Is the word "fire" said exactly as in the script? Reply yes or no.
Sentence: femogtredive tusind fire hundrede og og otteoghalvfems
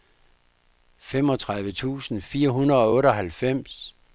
yes